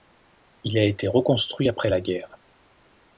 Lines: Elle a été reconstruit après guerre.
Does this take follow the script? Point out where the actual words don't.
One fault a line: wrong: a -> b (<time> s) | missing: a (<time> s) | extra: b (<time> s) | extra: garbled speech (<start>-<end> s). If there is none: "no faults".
wrong: Elle -> Il (0.6 s)
extra: la (1.9 s)